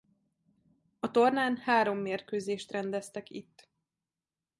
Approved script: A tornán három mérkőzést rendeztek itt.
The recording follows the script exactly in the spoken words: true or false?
true